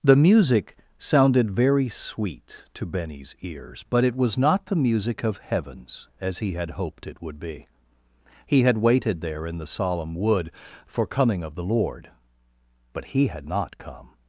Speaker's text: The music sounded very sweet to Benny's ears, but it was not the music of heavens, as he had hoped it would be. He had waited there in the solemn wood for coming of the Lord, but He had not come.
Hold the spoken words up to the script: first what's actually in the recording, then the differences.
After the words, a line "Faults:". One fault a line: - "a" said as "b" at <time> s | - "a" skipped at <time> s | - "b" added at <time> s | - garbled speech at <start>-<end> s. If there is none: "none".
The music sounded very sweet to Benny's ears, but it was not the music of heavens, as he had hoped it would be. He had waited there in the solemn wood for coming of the Lord, but He had not come.
Faults:
none